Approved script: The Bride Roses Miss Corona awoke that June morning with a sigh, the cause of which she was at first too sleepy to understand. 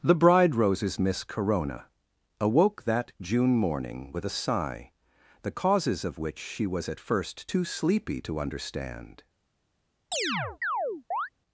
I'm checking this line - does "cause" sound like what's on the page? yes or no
no